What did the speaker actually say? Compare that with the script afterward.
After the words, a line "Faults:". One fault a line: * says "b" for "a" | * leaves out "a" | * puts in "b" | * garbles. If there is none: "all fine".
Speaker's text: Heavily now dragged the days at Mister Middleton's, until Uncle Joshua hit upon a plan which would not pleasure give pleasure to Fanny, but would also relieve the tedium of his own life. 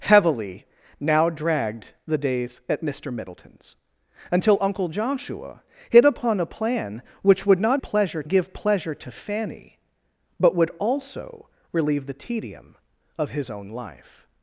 Heavily now dragged the days at Mister Middleton's, until Uncle Joshua hit upon a plan which would not pleasure give pleasure to Fanny, but would also relieve the tedium of his own life.
Faults:
all fine